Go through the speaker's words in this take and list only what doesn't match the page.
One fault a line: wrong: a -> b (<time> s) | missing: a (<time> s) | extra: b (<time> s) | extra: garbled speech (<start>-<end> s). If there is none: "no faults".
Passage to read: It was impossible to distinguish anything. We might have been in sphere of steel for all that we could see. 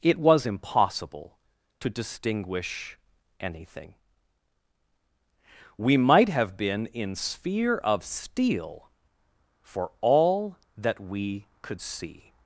no faults